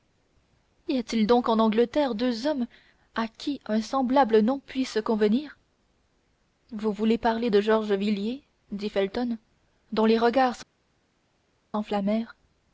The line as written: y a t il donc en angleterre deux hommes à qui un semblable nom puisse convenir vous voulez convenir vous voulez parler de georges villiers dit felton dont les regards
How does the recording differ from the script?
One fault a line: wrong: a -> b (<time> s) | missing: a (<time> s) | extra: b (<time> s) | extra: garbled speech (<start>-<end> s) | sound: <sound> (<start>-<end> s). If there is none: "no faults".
missing: convenir vous voulez (7.2 s)